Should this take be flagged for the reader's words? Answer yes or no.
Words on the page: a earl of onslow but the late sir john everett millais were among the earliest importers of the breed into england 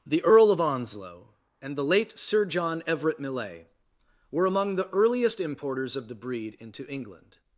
yes